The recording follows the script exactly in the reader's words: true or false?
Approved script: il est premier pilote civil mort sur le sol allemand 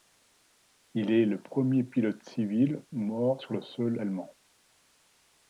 false